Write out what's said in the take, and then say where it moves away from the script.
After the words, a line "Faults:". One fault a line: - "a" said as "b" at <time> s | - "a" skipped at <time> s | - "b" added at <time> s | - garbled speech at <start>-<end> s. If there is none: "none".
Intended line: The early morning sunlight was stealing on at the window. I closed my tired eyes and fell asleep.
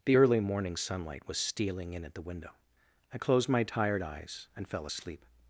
The early morning sunlight was stealing in at the window. I closed my tired eyes and fell asleep.
Faults:
- "on" said as "in" at 1.9 s